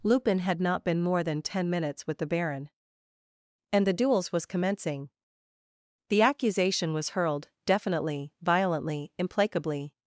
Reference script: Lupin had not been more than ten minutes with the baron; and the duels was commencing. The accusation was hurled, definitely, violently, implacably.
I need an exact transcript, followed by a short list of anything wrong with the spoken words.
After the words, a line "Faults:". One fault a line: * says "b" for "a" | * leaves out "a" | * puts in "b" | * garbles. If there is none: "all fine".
Lupin had not been more than ten minutes with the baron; and the duels was commencing. The accusation was hurled, definitely, violently, implacably.
Faults:
all fine